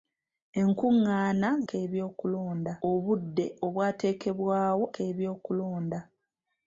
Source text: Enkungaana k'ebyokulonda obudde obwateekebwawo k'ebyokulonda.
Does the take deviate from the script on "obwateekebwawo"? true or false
false